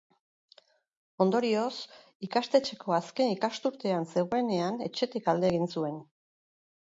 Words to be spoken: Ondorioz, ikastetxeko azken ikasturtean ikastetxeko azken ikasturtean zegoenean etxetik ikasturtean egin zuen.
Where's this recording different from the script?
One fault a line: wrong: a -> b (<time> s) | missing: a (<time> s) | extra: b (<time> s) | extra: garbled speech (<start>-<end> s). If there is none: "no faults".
missing: ikastetxeko azken ikasturtean (4.1 s)
wrong: ikasturtean -> alde (5.3 s)